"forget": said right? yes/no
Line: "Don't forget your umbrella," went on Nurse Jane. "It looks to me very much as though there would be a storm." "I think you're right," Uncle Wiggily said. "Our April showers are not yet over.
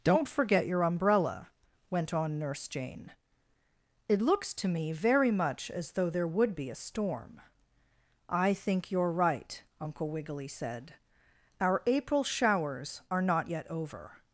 yes